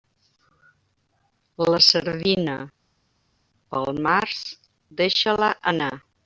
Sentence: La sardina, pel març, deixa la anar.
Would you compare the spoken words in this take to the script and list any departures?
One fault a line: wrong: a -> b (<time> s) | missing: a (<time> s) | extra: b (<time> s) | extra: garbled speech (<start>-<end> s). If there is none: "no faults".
no faults